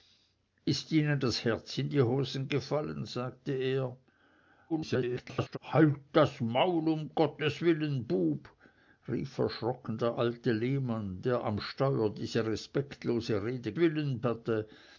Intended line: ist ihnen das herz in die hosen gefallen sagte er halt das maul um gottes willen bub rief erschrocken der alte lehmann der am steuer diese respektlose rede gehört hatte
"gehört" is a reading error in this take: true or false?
true